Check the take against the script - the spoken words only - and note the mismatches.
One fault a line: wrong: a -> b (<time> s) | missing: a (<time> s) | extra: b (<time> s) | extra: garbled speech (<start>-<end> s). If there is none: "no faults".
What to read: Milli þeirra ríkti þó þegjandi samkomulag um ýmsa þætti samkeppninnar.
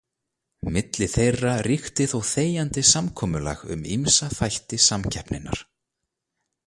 no faults